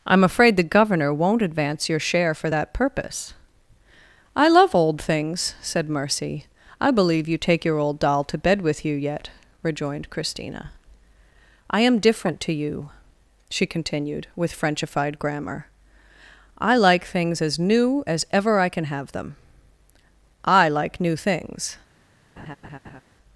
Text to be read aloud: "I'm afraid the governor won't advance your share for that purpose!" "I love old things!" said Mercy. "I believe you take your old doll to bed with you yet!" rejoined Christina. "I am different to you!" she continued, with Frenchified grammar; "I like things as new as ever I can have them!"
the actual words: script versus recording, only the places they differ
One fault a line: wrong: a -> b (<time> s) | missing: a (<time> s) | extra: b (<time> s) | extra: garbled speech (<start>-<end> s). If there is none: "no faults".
extra: I like new things (20.5 s)